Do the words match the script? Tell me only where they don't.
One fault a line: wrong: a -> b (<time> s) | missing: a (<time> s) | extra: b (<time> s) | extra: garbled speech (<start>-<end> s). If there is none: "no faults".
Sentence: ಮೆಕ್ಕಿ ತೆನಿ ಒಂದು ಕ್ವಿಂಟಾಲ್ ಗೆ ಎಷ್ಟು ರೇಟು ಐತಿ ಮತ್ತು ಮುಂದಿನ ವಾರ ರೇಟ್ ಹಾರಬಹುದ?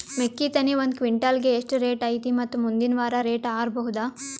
no faults